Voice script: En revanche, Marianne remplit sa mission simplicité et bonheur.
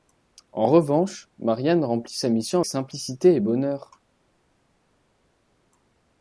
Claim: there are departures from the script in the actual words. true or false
false